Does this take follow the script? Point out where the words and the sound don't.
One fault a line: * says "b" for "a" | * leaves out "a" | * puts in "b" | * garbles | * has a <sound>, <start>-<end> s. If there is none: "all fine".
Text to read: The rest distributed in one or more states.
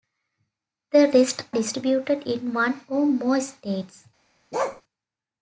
* has a bark, 4.5-4.8 s